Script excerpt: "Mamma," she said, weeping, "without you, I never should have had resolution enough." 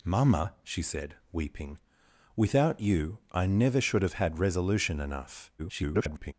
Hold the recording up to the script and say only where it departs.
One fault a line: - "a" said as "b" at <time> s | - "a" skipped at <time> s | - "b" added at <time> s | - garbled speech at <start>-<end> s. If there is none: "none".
- garbled speech at 5.6-6.3 s